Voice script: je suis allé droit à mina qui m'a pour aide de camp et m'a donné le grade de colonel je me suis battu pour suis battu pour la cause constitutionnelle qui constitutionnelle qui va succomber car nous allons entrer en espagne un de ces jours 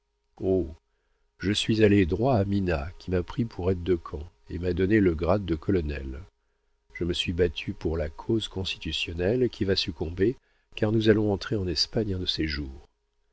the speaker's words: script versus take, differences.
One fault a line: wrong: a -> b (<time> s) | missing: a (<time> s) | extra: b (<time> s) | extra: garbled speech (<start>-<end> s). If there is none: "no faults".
extra: pris (3.2 s)
missing: suis battu pour (8.0 s)
missing: constitutionnelle qui (9.6 s)